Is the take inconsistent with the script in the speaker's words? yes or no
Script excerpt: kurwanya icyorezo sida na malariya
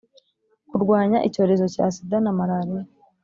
yes